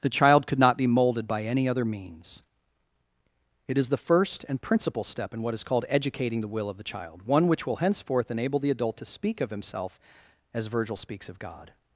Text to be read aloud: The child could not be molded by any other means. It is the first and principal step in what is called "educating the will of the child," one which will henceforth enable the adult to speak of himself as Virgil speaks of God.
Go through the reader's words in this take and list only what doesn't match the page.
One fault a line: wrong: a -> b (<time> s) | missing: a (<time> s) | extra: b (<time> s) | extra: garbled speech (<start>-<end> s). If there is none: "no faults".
no faults